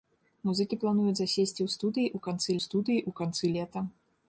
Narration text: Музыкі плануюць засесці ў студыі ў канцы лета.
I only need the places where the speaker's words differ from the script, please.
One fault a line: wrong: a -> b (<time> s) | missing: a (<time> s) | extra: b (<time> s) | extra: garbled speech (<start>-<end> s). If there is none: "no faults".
extra: студыі ў канцы (2.7 s)